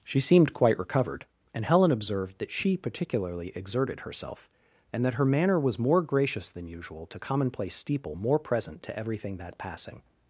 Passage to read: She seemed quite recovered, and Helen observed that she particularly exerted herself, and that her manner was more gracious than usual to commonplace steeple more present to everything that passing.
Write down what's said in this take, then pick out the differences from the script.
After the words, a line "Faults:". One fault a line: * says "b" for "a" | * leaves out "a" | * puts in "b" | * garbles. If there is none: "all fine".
She seemed quite recovered, and Helen observed that she particularly exerted herself, and that her manner was more gracious than usual to commonplace steeple more present to everything that passing.
Faults:
all fine